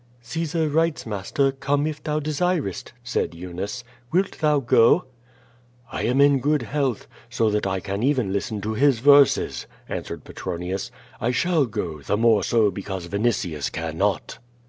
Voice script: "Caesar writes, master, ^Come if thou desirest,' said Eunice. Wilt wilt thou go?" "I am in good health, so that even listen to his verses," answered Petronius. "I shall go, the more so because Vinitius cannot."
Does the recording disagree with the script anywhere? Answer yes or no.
yes